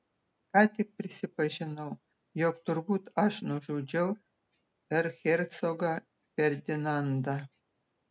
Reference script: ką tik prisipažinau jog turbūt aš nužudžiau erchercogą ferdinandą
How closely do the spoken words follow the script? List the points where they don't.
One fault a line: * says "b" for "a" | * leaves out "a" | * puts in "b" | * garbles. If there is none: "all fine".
all fine